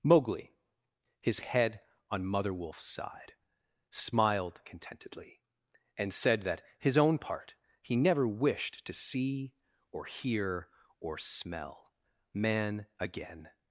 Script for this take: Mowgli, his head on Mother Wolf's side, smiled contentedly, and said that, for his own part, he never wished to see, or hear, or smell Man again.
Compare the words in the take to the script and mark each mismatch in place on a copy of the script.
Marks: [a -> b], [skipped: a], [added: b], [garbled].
Mowgli, his head on Mother Wolf's side, smiled contentedly, and said that, [skipped: for] his own part, he never wished to see, or hear, or smell Man again.